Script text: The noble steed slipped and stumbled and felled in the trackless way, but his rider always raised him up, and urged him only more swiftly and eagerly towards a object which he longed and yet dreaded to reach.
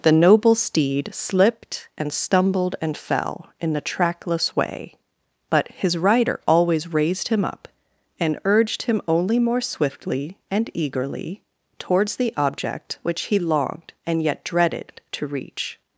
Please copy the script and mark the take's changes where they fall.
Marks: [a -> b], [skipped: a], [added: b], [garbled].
The noble steed slipped and stumbled and [felled -> fell] in the trackless way, but his rider always raised him up, and urged him only more swiftly and eagerly towards [a -> the] object which he longed and yet dreaded to reach.